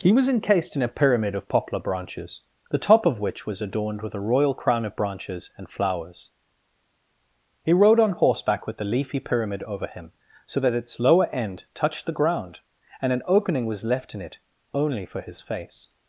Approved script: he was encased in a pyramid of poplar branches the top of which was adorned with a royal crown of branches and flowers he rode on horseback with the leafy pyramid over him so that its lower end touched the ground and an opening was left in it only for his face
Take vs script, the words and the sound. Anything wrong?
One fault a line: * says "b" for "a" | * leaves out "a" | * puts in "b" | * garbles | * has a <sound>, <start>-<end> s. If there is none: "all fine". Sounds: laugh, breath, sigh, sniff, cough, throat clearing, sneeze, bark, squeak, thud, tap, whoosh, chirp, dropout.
all fine